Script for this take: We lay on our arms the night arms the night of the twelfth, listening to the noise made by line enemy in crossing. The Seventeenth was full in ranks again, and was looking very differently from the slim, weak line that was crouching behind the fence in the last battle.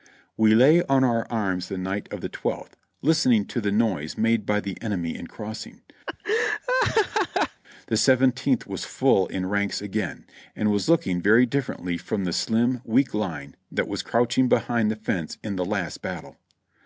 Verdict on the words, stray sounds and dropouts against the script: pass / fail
fail